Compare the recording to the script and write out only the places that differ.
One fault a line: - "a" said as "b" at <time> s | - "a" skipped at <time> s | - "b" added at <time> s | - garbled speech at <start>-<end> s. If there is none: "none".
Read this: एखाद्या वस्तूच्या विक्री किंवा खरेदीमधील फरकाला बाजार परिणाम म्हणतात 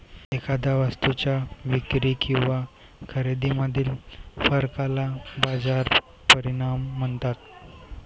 none